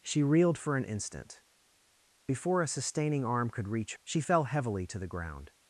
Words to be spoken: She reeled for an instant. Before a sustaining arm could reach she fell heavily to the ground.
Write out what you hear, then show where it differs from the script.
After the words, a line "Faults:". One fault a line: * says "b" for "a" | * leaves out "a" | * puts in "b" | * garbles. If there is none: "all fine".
She reeled for an instant. Before a sustaining arm could reach she fell heavily to the ground.
Faults:
all fine